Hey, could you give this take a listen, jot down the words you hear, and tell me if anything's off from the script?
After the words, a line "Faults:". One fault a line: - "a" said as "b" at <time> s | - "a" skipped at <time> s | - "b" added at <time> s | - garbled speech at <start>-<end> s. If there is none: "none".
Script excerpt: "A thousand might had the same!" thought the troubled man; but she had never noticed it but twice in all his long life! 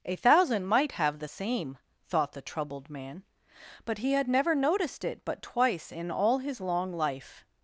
"A thousand might have the same!" thought the troubled man; but he had never noticed it but twice in all his long life!
Faults:
- "had" said as "have" at 0.9 s
- "she" said as "he" at 4.0 s